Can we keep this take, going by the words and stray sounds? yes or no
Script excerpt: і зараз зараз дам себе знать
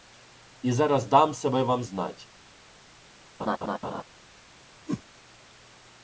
no